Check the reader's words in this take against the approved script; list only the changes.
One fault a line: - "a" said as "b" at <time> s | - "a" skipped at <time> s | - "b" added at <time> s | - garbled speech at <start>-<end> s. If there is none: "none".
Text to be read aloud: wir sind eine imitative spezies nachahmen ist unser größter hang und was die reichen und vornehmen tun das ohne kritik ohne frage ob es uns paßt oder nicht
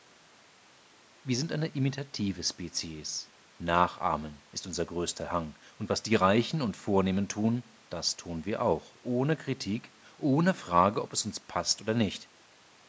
- "tun wir auch" added at 8.1 s